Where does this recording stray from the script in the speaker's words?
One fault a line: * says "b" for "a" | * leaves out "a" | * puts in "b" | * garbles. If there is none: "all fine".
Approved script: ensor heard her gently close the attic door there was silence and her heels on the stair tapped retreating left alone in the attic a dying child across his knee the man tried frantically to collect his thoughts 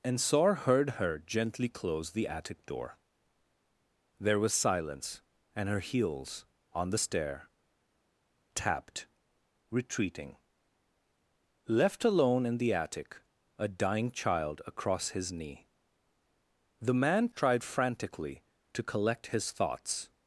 all fine